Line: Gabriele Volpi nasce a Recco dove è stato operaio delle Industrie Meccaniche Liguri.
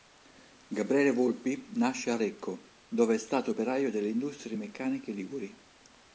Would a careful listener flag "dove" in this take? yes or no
no